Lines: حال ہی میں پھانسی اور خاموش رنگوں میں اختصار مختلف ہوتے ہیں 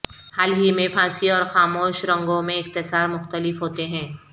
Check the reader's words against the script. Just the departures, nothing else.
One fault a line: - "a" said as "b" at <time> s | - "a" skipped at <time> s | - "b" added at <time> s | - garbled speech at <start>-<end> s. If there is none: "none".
none